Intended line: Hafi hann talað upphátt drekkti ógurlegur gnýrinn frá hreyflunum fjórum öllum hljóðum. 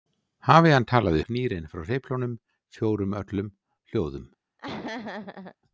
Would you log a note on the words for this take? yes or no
yes